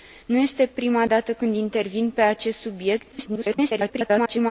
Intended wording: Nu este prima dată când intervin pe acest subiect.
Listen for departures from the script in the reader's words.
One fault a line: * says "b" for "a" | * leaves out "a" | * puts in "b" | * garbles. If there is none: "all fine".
* garbles